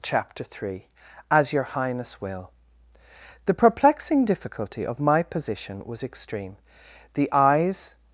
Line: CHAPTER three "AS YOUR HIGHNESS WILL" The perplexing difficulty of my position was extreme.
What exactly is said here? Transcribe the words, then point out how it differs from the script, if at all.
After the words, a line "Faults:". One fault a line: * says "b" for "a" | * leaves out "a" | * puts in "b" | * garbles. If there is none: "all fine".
CHAPTER three "AS YOUR HIGHNESS WILL" The perplexing difficulty of my position was extreme. The eyes
Faults:
* puts in "The eyes"